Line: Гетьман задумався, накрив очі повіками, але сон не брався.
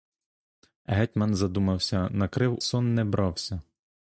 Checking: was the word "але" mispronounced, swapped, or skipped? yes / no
yes